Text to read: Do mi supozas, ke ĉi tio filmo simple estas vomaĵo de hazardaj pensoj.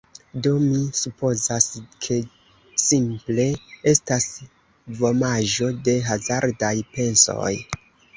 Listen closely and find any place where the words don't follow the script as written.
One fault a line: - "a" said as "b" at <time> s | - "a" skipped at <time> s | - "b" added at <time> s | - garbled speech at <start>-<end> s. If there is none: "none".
- "ĉi tio filmo" skipped at 2.2 s